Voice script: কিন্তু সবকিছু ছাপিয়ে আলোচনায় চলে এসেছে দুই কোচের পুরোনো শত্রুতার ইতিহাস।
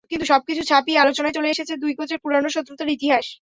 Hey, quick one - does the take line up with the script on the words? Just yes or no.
yes